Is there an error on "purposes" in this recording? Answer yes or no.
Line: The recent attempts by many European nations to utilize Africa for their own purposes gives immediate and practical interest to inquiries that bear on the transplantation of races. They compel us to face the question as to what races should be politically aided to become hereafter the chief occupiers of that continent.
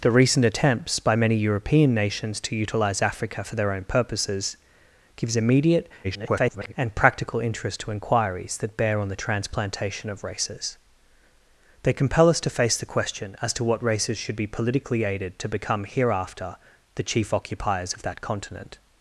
no